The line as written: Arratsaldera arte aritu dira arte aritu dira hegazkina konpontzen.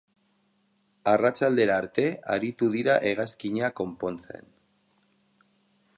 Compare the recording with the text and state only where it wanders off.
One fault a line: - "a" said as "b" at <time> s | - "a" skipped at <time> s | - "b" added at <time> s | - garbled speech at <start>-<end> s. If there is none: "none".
- "arte aritu dira" skipped at 3.0 s